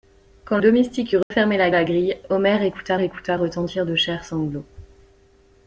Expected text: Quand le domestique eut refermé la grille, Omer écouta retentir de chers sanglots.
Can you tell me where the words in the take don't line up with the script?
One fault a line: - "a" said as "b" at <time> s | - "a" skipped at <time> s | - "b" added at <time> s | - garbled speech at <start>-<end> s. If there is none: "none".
- "le" skipped at 0.6 s
- "la" added at 1.7 s
- "écouta" added at 3.0 s